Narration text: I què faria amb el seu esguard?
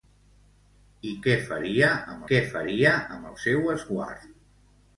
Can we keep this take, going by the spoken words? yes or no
no